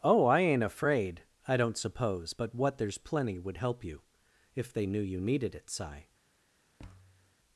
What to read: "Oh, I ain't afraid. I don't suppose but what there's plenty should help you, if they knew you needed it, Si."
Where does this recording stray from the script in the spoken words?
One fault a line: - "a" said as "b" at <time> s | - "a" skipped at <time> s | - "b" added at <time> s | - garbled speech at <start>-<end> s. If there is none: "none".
- "should" said as "would" at 3.4 s